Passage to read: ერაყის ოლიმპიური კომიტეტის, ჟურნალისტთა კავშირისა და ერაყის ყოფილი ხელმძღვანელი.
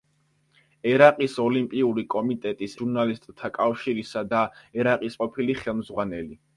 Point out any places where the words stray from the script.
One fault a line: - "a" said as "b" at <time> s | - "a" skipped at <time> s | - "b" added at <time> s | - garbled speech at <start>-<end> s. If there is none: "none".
none